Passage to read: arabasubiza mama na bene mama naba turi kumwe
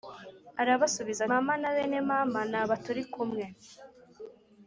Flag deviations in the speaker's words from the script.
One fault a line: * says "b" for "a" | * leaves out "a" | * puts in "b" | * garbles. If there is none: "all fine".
all fine